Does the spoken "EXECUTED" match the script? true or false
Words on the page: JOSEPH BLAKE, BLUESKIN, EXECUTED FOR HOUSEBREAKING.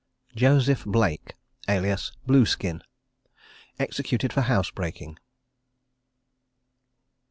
true